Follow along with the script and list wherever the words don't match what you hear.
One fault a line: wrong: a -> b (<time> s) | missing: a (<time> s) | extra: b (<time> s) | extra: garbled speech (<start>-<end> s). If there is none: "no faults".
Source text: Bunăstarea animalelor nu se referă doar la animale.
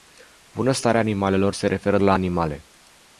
missing: nu (1.5 s)
missing: doar (2.0 s)